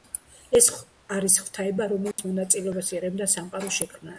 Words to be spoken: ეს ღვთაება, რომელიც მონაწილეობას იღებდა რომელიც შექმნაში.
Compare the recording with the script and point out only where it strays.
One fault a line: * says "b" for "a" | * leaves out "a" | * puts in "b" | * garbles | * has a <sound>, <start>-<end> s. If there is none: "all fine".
* puts in "არის"
* has a dropout, 2.1-2.2 s
* says "სამყაროს" for "რომელიც"